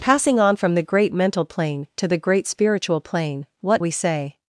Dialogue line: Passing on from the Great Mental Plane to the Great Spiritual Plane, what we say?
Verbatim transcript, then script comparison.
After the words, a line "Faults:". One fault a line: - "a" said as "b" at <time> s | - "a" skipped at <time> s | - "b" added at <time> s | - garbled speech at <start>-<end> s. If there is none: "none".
Passing on from the Great Mental Plane to the Great Spiritual Plane, what we say?
Faults:
none